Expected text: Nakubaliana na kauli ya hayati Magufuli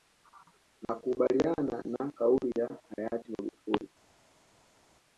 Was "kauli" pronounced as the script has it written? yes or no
yes